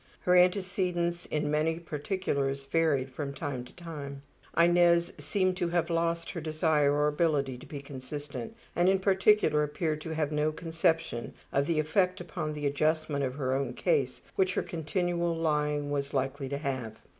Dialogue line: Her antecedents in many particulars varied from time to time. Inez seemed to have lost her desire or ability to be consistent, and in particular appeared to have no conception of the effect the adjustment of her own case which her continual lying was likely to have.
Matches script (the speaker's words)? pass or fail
fail